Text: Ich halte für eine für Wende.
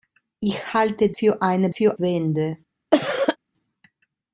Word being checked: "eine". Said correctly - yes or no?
yes